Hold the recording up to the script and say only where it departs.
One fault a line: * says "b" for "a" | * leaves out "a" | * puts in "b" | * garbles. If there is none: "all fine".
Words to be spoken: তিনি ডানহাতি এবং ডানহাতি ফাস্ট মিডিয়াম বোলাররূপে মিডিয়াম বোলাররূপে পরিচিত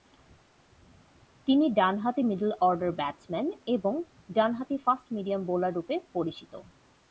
* puts in "মিডল অর্ডার ব্যাটসম্যান"
* leaves out "মিডিয়াম বোলাররূপে"